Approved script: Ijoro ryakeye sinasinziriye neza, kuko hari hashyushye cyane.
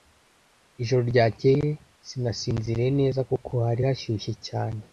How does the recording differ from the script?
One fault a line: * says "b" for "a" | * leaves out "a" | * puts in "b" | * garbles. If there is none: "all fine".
all fine